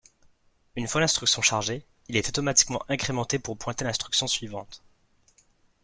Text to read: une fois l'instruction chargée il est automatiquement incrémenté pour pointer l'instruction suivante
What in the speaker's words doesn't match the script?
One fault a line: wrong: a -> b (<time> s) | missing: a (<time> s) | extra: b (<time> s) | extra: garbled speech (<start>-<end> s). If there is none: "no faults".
no faults